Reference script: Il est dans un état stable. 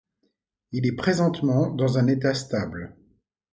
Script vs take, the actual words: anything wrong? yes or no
yes